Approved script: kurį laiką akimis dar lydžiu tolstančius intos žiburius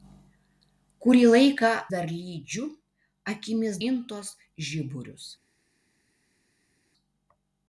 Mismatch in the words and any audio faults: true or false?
true